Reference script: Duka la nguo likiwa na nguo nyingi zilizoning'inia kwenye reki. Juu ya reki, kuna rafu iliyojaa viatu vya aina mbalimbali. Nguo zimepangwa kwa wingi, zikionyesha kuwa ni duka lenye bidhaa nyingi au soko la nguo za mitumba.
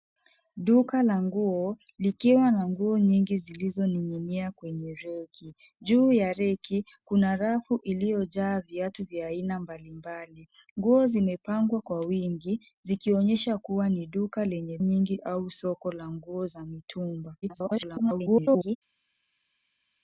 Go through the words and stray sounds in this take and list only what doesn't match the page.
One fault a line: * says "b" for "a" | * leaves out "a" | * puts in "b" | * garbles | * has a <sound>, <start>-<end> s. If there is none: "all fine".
* leaves out "bidhaa"
* garbles